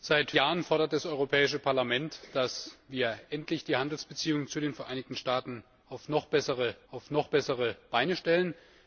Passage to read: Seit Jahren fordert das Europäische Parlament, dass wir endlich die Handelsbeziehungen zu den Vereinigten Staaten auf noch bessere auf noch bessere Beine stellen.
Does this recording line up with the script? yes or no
yes